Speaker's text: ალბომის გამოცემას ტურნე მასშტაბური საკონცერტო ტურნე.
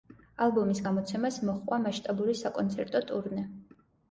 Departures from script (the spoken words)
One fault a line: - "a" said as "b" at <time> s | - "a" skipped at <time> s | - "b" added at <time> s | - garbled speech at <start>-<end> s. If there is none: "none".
- "ტურნე" said as "მოჰყვა" at 1.5 s